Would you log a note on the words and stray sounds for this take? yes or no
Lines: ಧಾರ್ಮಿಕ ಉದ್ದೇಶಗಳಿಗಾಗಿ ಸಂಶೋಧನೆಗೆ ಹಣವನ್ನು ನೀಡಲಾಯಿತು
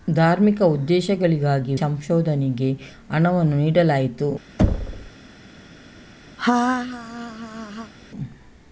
yes